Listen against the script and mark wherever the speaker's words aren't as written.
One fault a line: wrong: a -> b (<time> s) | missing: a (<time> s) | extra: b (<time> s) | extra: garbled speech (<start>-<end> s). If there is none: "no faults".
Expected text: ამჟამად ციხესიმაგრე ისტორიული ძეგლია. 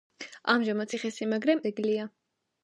missing: ისტორიული (1.6 s)